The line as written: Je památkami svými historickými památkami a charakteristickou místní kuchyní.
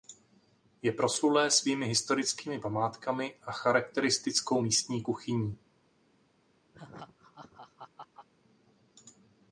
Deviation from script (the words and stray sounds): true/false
true